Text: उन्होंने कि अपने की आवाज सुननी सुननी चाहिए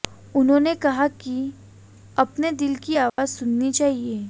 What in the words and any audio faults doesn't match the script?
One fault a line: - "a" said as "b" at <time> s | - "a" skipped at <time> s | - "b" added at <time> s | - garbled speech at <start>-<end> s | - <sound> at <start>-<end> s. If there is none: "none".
- "कहा" added at 0.8 s
- "दिल" added at 2.5 s
- dropout at 3.1-3.2 s
- "सुननी" skipped at 3.7 s